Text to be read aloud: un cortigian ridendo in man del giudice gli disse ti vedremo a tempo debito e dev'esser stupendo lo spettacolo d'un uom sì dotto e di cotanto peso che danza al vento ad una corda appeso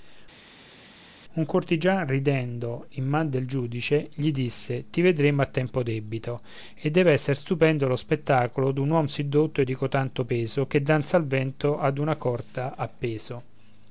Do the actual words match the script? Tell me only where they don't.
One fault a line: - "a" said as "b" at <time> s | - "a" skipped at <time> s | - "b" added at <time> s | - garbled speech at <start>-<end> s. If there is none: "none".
none